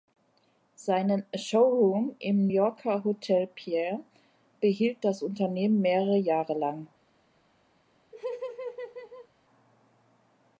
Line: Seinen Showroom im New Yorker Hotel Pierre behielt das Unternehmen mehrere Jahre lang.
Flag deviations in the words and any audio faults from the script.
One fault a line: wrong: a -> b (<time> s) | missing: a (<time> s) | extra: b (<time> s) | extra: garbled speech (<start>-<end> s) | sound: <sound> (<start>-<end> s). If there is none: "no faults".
missing: New (2.5 s)
sound: laugh (8.1-9.3 s)